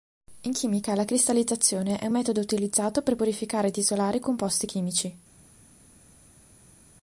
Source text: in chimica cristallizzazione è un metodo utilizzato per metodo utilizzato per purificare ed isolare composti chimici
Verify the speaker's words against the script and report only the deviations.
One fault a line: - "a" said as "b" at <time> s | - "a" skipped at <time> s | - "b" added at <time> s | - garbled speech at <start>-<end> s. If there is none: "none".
- "la" added at 0.9 s
- "metodo utilizzato per" skipped at 3.2 s